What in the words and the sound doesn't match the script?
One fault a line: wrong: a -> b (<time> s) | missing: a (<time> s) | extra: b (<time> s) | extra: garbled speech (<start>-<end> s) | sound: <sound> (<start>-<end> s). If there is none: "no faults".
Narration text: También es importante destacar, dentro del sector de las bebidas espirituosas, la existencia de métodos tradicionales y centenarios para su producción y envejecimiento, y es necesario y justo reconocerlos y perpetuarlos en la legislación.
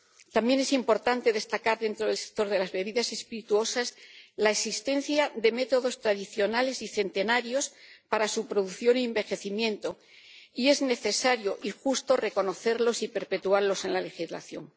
no faults